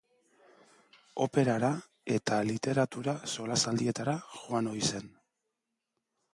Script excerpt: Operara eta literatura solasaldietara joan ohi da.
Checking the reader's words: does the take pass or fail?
fail